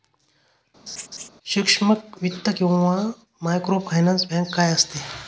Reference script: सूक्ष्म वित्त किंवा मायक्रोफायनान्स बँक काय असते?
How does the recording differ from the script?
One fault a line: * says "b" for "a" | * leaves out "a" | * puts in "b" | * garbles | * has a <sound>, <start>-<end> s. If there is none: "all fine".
* has a laugh, 0.9-1.3 s